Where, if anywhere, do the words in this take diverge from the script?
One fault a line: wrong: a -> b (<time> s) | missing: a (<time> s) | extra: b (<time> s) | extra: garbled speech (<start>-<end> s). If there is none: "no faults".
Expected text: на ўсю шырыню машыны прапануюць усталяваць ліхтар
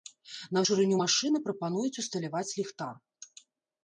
missing: ўсю (0.6 s)